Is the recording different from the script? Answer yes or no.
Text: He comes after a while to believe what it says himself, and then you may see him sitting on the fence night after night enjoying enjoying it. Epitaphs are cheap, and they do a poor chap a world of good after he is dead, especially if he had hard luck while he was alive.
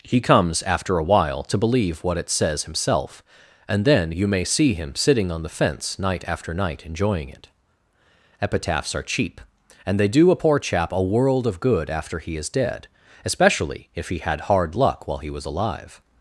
yes